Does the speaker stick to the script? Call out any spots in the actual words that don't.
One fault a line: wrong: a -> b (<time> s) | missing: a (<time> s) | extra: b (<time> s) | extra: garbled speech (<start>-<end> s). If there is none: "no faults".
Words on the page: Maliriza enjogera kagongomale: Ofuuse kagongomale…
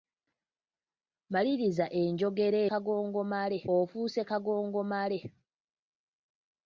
no faults